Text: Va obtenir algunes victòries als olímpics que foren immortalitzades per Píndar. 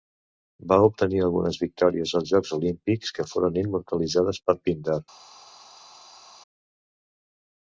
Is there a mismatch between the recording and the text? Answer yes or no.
yes